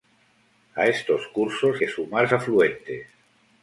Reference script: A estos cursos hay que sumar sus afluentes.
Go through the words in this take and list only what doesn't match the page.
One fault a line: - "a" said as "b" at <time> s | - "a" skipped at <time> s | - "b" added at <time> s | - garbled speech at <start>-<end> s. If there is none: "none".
- "hay" skipped at 1.8 s
- "sus" skipped at 2.3 s